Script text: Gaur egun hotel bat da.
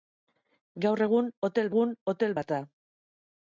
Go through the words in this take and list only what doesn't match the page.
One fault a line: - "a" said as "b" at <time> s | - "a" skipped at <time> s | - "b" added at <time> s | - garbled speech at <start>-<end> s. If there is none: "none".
- "egun hotel" added at 1.7 s